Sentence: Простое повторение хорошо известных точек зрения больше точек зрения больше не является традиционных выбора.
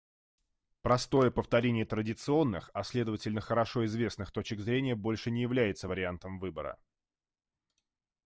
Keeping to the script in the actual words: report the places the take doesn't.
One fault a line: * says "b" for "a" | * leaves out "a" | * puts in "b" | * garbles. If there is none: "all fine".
* says "традиционных а следовательно хорошо известных" for "хорошо известных точек зрения больше"
* says "вариантом" for "традиционных"